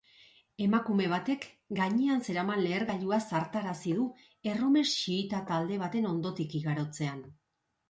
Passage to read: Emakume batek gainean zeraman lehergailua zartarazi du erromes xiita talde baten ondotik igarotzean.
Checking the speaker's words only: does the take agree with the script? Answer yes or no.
yes